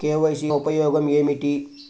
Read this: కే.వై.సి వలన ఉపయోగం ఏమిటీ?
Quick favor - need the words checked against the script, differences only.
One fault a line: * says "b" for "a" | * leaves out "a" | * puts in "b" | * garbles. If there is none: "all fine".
* leaves out "వలన"